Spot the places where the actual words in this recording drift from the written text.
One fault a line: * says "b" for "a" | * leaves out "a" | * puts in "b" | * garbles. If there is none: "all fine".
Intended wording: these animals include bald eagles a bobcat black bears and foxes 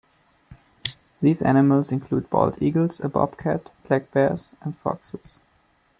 all fine